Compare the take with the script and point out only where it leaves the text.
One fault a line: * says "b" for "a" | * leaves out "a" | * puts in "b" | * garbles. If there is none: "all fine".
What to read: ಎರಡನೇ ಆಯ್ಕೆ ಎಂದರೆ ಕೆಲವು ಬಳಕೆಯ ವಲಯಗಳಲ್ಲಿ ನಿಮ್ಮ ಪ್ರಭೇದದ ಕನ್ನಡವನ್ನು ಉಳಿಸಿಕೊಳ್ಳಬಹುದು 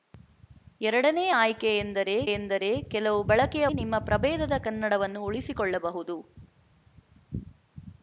* puts in "ಎಂದರೆ"
* leaves out "ವಲಯಗಳಲ್ಲಿ"